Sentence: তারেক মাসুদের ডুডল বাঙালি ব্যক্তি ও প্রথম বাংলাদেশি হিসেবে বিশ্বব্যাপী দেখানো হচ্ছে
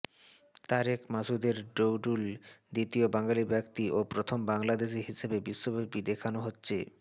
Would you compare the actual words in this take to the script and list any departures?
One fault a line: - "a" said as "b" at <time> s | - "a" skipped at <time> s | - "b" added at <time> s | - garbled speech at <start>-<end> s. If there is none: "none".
- "দ্বিতীয়" added at 2.7 s